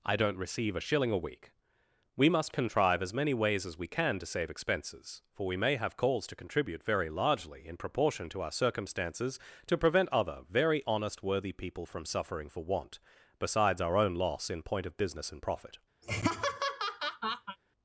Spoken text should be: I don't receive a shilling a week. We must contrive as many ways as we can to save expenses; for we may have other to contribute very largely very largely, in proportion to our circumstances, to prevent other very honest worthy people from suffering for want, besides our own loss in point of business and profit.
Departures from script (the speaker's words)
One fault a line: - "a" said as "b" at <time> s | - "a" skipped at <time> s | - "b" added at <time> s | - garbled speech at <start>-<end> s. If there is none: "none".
- "other" said as "calls" at 6.0 s
- "very largely" skipped at 7.7 s